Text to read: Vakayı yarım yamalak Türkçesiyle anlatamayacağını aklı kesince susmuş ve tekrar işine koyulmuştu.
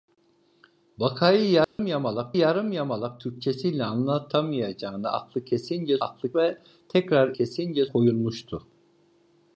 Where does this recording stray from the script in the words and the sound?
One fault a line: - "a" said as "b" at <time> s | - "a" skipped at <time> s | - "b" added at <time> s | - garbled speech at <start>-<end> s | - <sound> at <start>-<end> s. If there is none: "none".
- dropout at 1.6-1.8 s
- "yarım yamalak" added at 2.4 s
- "susmuş" said as "aklı" at 6.0 s
- "işine" said as "kesince" at 7.3 s